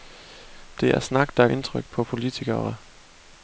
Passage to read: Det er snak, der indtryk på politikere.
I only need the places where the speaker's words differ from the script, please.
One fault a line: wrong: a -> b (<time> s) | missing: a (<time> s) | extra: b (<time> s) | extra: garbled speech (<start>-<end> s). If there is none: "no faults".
no faults